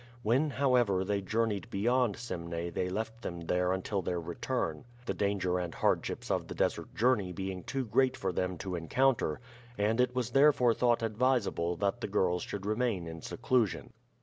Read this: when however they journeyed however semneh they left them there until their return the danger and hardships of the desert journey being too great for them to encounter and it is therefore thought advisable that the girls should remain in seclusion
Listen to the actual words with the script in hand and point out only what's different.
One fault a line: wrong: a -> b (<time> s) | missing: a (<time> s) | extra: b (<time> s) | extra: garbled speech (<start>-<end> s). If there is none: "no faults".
wrong: however -> beyond (1.7 s)
wrong: is -> was (10.2 s)